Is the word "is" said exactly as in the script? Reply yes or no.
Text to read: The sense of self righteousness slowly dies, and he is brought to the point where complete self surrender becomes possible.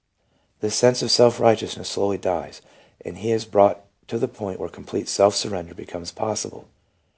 yes